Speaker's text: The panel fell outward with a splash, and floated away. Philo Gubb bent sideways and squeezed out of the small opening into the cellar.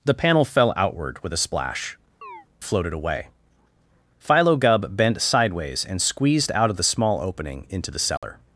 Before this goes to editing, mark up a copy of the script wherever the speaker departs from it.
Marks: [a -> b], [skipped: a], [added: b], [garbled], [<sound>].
The panel fell outward with a splash, [skipped: and] [chirp] floated away. Philo Gubb bent sideways and squeezed out of the small opening into the cellar. [dropout]